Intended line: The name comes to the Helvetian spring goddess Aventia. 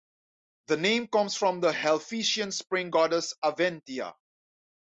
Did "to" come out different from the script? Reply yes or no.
yes